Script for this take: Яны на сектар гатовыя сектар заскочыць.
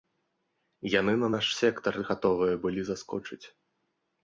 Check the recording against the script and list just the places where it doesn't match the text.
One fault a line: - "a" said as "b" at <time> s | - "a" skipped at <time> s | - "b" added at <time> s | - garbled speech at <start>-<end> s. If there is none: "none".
- "наш" added at 1.3 s
- "сектар" said as "былі" at 2.7 s